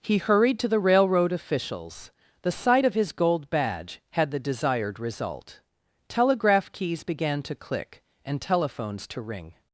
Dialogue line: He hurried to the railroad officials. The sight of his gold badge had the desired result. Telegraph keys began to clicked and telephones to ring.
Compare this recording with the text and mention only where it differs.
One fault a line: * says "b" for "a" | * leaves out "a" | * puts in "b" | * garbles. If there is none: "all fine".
* says "click" for "clicked"